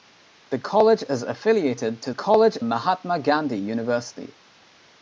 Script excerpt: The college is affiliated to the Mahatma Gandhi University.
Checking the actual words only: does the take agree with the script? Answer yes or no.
no